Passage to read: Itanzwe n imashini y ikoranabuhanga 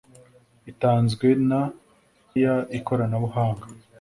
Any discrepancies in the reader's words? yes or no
yes